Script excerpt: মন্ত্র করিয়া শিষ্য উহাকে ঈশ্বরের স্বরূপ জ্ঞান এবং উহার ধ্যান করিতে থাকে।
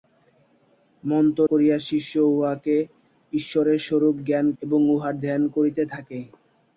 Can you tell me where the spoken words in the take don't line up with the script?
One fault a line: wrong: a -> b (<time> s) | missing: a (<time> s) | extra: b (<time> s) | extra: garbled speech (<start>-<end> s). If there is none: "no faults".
no faults